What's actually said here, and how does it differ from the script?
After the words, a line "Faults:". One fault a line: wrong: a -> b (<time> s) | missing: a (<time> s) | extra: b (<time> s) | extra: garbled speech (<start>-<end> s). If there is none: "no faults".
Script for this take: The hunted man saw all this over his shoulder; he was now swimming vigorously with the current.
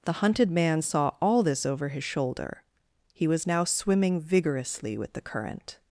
The hunted man saw all this over his shoulder; he was now swimming vigorously with the current.
Faults:
no faults